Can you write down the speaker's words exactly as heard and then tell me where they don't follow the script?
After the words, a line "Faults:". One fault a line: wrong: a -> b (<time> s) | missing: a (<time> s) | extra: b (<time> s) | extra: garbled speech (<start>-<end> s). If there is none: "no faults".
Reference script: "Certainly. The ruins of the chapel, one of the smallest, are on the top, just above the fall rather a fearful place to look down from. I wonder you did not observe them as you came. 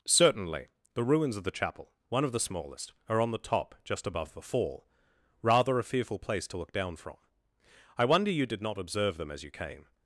"Certainly. The ruins of the chapel, one of the smallest, are on the top, just above the fall rather a fearful place to look down from. I wonder you did not observe them as you came.
Faults:
no faults